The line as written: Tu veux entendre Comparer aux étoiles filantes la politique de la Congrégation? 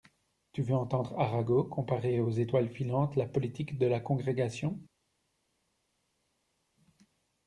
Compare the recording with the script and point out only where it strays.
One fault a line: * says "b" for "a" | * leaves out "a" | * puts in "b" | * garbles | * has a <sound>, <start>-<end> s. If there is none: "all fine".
* puts in "Arago"